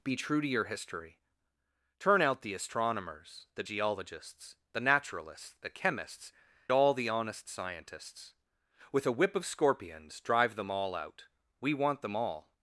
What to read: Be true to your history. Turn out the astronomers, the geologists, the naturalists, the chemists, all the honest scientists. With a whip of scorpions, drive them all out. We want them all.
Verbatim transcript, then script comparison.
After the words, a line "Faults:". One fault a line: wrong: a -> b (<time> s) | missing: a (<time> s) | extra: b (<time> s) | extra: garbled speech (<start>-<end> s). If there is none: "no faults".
Be true to your history. Turn out the astronomers, the geologists, the naturalists, the chemists, all the honest scientists. With a whip of scorpions, drive them all out. We want them all.
Faults:
no faults